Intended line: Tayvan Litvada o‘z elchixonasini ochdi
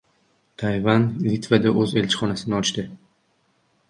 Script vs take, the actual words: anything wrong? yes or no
no